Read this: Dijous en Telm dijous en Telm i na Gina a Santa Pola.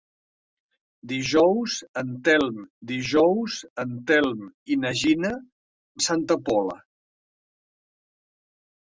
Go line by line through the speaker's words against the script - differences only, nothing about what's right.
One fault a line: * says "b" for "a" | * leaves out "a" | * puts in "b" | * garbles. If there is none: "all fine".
all fine